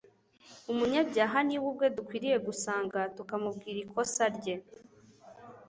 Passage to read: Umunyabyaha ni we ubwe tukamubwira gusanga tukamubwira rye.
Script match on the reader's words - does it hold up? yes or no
no